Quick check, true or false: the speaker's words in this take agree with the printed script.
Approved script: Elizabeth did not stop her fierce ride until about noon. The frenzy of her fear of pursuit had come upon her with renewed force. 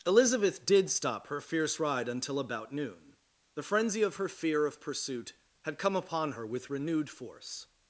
false